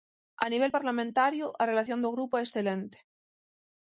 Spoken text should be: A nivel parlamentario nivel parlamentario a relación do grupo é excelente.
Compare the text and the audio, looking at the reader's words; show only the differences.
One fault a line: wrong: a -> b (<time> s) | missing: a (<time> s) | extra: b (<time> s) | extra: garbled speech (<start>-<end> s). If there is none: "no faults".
missing: nivel parlamentario (1.5 s)